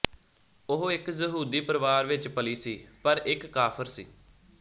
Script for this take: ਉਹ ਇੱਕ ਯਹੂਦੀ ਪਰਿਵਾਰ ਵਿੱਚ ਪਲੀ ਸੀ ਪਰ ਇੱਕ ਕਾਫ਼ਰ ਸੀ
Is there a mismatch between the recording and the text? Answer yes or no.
no